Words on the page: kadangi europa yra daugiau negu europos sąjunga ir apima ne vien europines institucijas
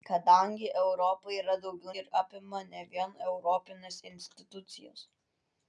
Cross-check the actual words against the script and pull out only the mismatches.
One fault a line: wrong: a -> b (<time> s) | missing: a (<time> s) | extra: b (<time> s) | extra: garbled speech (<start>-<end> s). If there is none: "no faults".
missing: negu europos sąjunga (1.9 s)